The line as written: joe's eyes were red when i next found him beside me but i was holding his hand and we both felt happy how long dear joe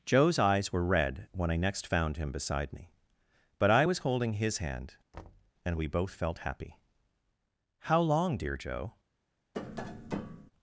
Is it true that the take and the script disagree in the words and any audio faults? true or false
true